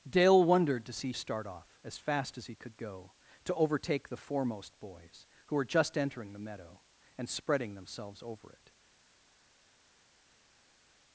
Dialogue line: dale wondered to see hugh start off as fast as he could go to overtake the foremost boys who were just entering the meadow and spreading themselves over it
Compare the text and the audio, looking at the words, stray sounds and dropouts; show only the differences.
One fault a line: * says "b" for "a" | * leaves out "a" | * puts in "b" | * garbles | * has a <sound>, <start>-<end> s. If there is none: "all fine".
* leaves out "hugh"